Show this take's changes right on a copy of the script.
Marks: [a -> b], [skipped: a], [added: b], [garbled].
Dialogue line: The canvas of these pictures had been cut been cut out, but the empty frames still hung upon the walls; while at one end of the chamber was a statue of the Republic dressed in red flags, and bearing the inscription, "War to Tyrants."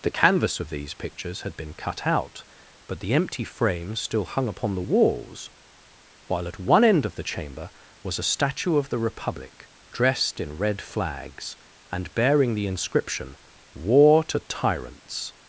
The canvas of these pictures had been cut [skipped: been cut] out, but the empty frames still hung upon the walls; while at one end of the chamber was a statue of the Republic dressed in red flags, and bearing the inscription, "War to Tyrants."